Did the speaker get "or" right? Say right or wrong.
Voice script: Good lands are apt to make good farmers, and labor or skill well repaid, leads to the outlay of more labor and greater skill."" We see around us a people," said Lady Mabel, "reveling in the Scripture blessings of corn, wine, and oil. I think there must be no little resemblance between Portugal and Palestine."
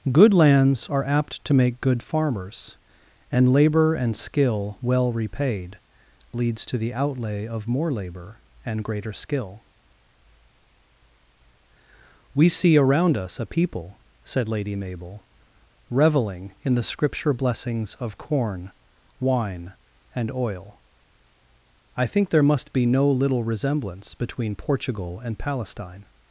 wrong